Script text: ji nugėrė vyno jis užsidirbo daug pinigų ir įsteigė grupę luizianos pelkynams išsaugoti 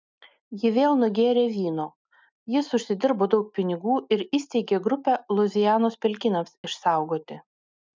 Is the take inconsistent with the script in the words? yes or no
yes